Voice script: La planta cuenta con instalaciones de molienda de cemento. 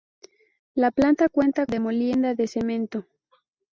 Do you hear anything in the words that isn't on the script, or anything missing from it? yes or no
yes